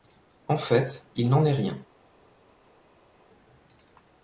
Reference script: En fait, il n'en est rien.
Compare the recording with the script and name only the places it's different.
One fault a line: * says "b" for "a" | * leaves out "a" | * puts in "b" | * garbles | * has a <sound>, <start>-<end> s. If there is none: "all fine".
all fine